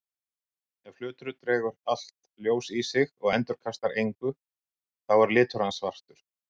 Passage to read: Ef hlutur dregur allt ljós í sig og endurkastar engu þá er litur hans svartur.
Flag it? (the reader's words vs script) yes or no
no